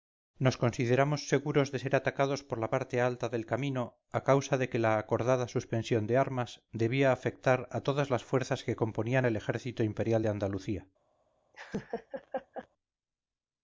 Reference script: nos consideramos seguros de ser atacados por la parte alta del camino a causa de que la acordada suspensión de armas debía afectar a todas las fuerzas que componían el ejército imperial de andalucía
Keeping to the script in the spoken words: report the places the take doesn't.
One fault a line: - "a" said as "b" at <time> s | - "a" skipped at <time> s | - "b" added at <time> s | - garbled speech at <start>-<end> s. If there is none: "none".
none